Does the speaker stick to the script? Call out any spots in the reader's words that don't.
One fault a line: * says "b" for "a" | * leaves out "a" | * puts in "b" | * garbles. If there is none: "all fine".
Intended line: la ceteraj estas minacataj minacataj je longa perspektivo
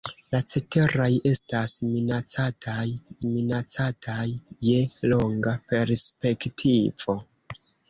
all fine